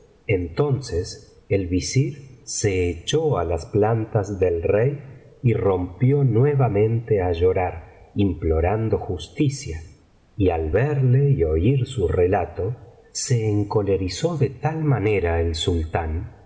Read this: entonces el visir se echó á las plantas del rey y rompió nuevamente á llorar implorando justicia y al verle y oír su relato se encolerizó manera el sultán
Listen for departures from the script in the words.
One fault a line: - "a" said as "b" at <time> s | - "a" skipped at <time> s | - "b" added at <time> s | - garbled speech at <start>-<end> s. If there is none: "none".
- "de tal" added at 14.4 s